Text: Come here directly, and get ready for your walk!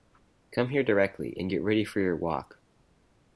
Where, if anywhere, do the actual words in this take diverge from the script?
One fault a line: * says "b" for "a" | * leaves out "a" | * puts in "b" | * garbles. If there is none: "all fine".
all fine